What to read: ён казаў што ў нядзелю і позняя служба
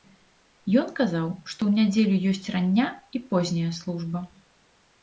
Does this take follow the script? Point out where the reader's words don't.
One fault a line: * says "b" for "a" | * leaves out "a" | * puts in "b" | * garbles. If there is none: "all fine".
* puts in "ёсць рання"